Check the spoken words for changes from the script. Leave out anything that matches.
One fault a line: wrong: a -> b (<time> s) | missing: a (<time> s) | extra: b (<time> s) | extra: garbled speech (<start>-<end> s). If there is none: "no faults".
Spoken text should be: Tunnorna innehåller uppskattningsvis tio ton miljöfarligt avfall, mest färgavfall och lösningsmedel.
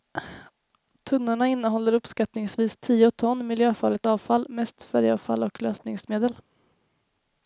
no faults